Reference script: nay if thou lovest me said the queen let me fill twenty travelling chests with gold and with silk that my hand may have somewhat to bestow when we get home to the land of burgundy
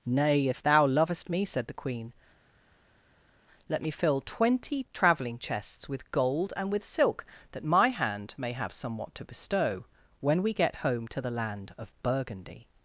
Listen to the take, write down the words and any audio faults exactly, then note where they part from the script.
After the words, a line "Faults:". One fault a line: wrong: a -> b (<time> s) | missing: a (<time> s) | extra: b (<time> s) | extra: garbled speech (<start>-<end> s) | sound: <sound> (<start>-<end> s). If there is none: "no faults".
nay if thou lovest me said the queen let me fill twenty travelling chests with gold and with silk that my hand may have somewhat to bestow when we get home to the land of burgundy
Faults:
no faults